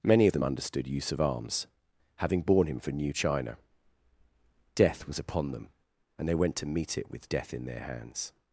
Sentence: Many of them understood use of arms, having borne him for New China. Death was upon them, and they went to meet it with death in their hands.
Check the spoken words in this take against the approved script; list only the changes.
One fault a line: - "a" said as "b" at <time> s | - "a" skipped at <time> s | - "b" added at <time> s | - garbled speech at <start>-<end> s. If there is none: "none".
none